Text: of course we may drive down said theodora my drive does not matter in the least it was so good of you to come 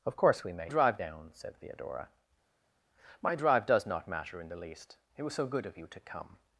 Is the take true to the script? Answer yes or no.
yes